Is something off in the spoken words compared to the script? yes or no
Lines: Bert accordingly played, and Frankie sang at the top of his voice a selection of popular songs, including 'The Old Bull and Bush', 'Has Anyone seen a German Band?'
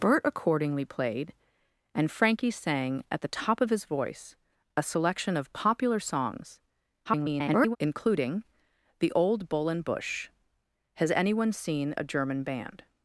yes